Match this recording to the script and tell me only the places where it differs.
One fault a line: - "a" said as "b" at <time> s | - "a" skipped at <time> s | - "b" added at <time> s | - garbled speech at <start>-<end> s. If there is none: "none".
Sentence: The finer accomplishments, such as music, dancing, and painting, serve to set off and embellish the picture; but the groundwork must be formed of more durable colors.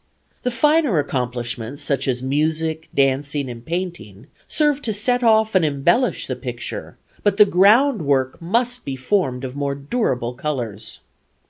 none